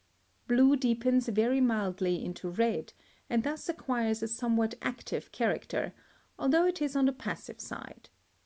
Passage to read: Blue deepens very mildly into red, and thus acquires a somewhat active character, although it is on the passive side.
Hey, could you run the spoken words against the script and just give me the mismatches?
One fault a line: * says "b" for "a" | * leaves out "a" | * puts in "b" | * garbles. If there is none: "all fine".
all fine